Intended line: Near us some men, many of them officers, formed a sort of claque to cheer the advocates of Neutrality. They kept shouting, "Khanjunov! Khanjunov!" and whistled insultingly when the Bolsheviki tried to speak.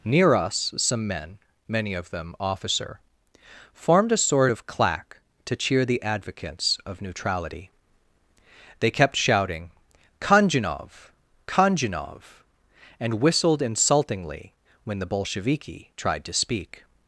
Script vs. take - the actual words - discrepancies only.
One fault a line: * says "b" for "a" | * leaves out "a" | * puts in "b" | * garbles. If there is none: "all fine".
* says "officer" for "officers"